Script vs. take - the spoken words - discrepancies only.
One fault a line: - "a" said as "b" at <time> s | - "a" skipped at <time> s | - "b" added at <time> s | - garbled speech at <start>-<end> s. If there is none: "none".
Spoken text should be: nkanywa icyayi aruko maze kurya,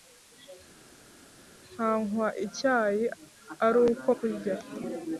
- "maze" skipped at 4.1 s